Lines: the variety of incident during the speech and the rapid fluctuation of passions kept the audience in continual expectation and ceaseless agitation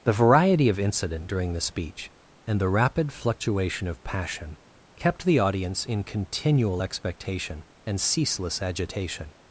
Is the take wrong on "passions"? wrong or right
wrong